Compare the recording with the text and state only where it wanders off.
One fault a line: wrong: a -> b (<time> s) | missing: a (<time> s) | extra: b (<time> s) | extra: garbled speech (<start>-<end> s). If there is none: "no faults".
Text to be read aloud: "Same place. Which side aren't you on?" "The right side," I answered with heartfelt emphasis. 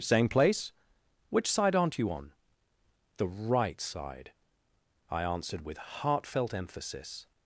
no faults